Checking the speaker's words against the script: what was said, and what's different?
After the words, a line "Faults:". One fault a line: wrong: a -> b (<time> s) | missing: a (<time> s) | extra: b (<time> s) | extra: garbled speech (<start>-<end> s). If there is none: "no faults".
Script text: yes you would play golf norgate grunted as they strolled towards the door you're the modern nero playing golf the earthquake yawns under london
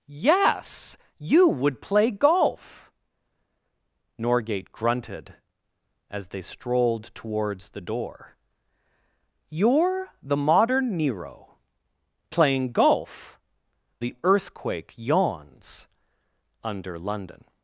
yes you would play golf norgate grunted as they strolled towards the door you're the modern nero playing golf the earthquake yawns under london
Faults:
no faults